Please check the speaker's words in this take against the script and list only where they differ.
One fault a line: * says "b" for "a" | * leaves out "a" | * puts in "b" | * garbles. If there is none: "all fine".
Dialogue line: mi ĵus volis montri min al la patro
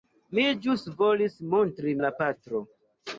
* leaves out "min al"